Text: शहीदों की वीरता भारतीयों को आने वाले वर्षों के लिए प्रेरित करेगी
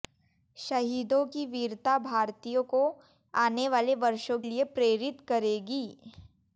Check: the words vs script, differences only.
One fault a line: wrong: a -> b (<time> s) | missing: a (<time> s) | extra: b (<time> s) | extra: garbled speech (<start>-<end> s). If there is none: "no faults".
missing: के (4.4 s)